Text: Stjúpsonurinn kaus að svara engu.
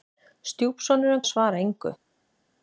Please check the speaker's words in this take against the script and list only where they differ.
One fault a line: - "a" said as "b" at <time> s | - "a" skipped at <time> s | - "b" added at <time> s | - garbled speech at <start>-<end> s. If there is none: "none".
- "kaus" skipped at 1.2 s